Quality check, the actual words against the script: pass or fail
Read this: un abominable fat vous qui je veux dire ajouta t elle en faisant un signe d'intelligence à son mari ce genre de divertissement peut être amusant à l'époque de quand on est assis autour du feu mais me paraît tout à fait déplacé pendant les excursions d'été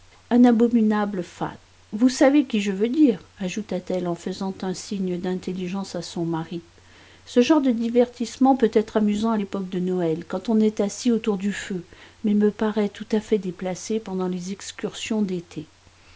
fail